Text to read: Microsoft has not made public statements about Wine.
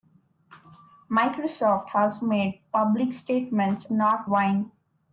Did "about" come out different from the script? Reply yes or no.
yes